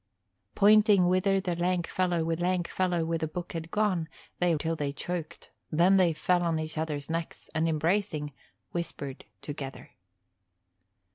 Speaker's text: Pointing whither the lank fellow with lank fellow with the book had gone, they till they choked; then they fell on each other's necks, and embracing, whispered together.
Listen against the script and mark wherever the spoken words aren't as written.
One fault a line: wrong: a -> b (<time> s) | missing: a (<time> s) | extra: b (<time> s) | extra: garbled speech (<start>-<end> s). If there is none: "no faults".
no faults